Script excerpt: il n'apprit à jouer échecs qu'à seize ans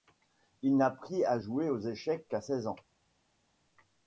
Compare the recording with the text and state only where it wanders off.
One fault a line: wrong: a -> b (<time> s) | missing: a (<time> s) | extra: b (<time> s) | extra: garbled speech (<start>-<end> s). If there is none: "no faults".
extra: aux (1.7 s)